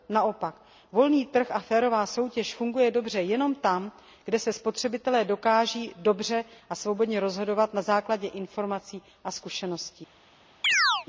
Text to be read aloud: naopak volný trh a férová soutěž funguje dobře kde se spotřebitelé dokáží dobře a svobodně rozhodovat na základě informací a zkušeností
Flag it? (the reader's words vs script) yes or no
yes